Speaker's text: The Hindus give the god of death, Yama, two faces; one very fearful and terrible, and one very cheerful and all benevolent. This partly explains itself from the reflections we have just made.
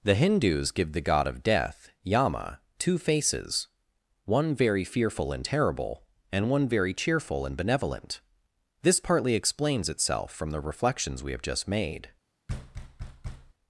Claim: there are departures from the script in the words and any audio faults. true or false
true